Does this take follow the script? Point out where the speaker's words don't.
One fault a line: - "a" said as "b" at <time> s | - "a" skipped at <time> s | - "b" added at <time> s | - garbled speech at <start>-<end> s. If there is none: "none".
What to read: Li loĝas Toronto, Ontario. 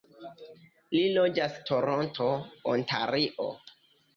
none